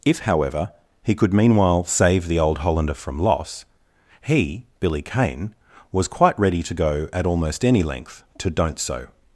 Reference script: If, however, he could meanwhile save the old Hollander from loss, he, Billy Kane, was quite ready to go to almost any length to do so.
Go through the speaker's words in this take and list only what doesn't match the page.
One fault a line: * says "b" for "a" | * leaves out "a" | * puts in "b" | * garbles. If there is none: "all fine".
* says "at" for "to"
* says "don't" for "do"